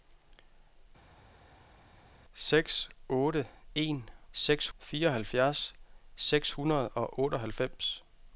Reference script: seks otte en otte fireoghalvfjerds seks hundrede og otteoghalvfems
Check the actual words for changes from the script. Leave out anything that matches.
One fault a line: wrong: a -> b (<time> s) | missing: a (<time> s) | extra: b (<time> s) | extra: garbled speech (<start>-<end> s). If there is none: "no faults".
wrong: otte -> seks (4.3 s)